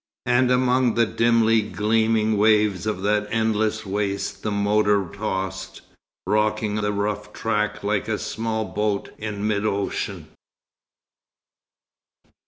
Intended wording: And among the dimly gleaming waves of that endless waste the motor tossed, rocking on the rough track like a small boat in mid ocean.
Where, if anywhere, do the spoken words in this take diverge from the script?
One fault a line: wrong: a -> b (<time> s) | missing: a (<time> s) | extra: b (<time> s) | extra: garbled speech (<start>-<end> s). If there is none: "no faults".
missing: on (6.8 s)